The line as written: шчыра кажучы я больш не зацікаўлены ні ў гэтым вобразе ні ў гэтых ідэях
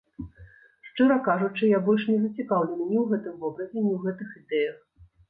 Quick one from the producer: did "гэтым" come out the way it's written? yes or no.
yes